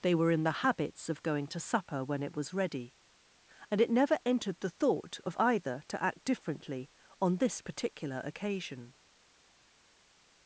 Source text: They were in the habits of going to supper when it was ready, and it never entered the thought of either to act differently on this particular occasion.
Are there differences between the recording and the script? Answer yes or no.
no